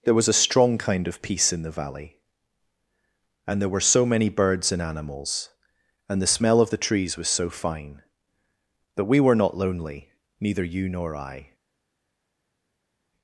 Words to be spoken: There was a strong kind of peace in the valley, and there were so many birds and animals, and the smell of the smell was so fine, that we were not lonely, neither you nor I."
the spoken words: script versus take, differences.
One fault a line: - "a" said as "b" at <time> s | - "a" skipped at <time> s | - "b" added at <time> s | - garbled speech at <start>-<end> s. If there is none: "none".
- "smell" said as "trees" at 6.8 s